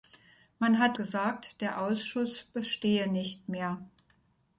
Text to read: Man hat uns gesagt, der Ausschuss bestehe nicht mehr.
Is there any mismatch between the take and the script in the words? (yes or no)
yes